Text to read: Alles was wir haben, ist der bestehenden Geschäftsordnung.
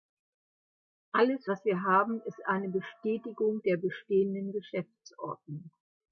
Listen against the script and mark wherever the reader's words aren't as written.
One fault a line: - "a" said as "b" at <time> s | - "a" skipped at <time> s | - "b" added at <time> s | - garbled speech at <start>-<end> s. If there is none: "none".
- "eine Bestätigung" added at 2.4 s